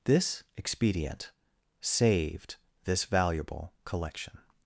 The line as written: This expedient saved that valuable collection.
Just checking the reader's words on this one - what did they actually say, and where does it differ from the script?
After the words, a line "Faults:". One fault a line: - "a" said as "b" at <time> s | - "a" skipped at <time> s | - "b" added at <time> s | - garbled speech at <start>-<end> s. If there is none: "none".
This expedient saved this valuable collection.
Faults:
- "that" said as "this" at 2.8 s